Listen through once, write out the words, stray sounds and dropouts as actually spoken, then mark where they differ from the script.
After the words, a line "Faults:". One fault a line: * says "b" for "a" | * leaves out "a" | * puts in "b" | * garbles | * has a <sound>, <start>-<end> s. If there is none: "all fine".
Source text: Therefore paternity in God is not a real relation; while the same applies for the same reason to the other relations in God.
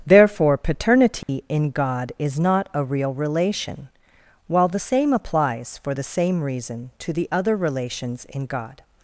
Therefore paternity in God is not a real relation; while the same applies for the same reason to the other relations in God.
Faults:
* has a dropout, 1.2-1.3 s